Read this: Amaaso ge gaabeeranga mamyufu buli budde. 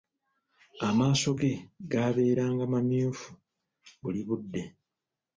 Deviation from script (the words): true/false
false